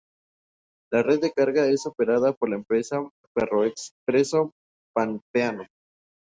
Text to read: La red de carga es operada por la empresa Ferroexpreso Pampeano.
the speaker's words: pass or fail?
pass